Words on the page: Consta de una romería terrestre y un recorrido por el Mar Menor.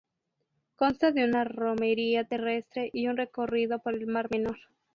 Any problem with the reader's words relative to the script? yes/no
no